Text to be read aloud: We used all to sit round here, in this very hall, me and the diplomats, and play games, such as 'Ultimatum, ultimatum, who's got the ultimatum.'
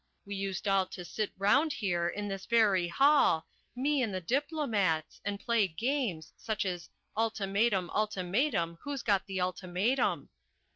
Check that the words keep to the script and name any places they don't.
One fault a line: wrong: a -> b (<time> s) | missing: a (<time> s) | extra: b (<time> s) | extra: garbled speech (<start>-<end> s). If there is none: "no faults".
no faults